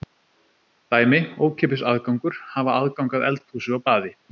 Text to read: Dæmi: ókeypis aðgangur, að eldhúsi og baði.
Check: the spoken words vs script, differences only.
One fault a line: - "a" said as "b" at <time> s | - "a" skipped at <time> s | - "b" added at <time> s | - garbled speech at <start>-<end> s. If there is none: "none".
- "hafa aðgang" added at 2.6 s